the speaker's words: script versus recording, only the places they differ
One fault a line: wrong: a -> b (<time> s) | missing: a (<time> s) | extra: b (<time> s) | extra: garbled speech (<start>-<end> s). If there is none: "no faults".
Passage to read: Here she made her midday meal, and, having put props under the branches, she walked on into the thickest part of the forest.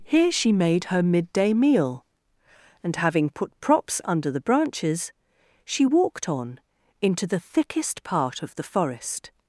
no faults